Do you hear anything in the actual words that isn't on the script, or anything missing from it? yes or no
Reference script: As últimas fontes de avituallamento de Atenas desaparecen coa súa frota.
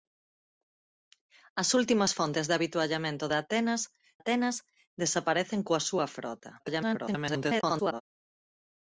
yes